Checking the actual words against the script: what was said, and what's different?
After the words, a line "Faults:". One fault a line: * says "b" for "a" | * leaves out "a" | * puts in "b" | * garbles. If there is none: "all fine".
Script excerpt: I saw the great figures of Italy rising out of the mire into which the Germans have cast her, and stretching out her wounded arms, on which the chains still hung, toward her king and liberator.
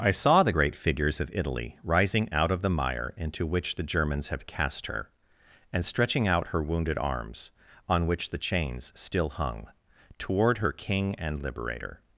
I saw the great figures of Italy rising out of the mire into which the Germans have cast her, and stretching out her wounded arms, on which the chains still hung, toward her king and liberator.
Faults:
all fine